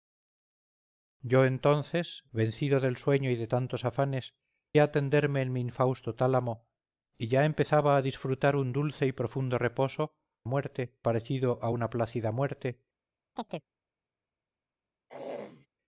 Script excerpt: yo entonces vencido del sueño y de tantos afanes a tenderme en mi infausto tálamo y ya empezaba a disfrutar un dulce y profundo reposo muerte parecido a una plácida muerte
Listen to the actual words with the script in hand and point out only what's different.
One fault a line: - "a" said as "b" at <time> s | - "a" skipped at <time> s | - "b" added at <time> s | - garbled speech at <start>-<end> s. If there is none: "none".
none